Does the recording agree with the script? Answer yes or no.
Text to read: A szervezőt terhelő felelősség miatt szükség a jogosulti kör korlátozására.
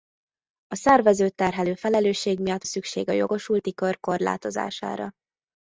yes